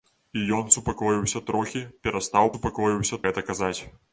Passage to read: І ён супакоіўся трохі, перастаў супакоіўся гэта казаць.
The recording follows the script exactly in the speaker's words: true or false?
true